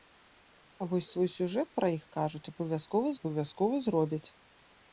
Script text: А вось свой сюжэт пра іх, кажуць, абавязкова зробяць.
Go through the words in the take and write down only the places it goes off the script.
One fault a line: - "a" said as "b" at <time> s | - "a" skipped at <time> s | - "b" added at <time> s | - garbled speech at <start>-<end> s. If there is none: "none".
- "абавязкова" added at 3.2 s